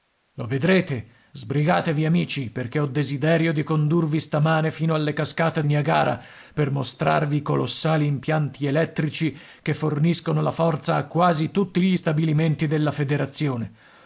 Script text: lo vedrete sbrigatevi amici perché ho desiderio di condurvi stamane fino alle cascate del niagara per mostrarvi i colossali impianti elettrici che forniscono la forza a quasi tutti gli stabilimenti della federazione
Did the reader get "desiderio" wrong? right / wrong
right